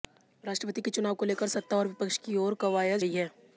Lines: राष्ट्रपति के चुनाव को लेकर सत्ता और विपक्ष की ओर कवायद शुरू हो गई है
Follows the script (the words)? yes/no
no